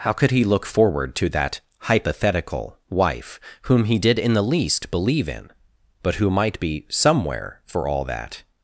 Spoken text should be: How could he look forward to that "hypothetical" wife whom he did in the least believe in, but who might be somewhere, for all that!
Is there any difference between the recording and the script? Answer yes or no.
no